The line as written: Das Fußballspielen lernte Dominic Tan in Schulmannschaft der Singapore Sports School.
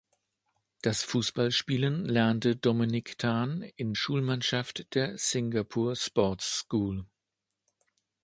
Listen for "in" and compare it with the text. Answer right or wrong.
right